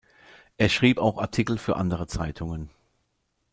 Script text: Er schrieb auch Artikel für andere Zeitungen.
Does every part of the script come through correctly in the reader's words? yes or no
yes